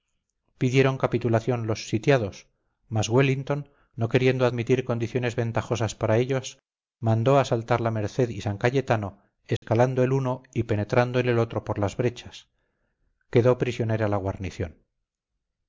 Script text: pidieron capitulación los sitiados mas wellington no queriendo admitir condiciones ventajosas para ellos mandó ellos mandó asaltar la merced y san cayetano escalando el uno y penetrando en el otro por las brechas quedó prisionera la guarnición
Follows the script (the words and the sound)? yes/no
no